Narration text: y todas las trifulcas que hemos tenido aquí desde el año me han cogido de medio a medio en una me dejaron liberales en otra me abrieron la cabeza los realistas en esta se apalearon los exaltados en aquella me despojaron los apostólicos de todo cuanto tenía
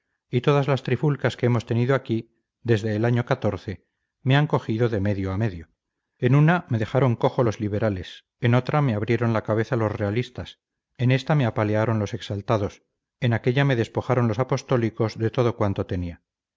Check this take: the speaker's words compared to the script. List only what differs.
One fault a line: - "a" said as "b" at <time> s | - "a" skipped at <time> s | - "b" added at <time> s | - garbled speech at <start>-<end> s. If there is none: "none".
- "cojo los" added at 7.2 s
- "se" said as "me" at 11.3 s